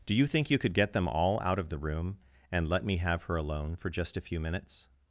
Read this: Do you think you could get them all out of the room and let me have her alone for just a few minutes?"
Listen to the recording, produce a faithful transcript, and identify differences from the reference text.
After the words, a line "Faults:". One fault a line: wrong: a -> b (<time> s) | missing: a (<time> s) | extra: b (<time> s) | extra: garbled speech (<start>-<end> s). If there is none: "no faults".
Do you think you could get them all out of the room and let me have her alone for just a few minutes?"
Faults:
no faults